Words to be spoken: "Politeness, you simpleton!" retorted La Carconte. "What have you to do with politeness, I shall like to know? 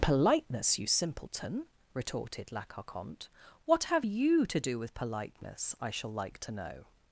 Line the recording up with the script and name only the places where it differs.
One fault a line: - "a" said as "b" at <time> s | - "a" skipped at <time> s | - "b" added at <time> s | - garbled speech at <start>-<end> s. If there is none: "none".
none